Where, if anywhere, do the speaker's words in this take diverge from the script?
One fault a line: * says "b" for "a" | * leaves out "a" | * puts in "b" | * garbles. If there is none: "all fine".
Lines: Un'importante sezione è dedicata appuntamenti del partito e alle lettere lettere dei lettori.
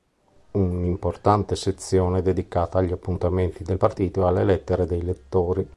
* puts in "agli"
* leaves out "lettere"